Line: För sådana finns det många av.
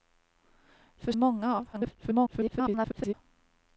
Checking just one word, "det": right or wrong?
wrong